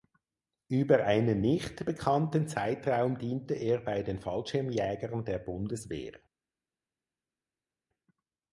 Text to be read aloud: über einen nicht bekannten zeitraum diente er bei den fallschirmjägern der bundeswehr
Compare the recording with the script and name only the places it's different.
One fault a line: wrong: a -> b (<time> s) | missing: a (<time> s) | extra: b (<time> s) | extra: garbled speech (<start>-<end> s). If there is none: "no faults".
no faults